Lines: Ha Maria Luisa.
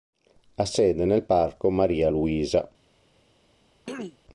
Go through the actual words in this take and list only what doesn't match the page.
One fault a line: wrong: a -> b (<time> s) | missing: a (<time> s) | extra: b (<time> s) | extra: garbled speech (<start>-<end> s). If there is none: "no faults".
extra: sede nel Parco (0.7 s)